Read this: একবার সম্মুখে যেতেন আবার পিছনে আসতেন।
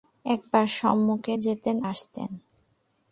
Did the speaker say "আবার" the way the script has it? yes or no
no